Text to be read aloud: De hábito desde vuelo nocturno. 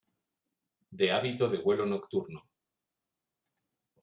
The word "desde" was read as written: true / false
false